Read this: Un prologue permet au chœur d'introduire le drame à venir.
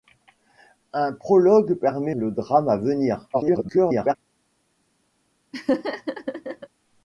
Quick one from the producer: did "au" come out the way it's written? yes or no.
no